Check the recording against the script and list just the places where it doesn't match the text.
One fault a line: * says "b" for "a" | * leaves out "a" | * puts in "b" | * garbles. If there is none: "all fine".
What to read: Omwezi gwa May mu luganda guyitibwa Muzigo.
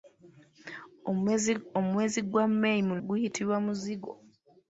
* leaves out "luganda"